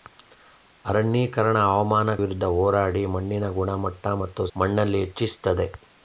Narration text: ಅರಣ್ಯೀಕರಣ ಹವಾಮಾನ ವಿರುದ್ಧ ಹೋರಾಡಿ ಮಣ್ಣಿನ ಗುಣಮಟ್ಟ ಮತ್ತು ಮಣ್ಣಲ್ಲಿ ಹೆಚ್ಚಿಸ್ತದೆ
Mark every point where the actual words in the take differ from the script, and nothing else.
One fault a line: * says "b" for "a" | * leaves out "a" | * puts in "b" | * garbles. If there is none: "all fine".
all fine